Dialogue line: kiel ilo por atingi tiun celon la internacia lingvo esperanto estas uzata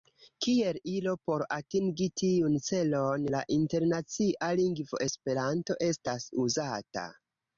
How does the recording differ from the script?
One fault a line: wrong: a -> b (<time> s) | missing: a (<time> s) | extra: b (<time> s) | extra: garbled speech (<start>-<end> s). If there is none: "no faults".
no faults